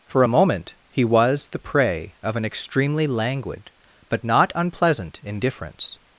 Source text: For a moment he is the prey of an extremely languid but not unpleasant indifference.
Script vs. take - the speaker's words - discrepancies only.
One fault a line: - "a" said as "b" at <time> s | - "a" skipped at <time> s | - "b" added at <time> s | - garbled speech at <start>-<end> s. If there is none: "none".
- "is" said as "was" at 1.1 s